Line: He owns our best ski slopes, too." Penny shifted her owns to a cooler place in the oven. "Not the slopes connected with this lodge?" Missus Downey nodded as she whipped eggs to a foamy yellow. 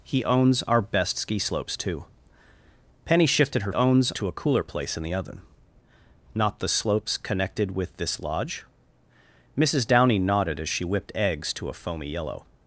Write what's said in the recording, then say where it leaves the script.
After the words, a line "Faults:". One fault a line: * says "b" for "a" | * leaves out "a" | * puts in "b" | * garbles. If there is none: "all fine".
He owns our best ski slopes, too." Penny shifted her owns to a cooler place in the oven. "Not the slopes connected with this lodge?" Missus Downey nodded as she whipped eggs to a foamy yellow.
Faults:
all fine